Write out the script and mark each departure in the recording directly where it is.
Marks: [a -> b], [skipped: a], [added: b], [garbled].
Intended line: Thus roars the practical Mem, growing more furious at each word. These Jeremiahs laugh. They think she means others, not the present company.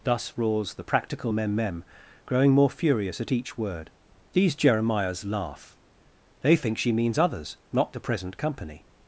Thus roars the practical Mem, [added: Mem] growing more furious at each word. These Jeremiahs laugh. They think she means others, not the present company.